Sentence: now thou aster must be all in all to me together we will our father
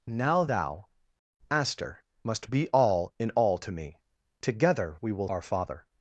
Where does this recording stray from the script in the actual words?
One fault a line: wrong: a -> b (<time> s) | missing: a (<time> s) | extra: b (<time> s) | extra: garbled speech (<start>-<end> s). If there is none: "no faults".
no faults